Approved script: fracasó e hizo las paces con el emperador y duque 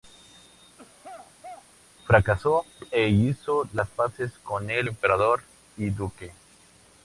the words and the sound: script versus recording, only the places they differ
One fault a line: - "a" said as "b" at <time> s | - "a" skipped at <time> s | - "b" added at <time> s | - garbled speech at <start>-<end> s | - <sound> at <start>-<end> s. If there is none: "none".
- throat clearing at 0.8-1.7 s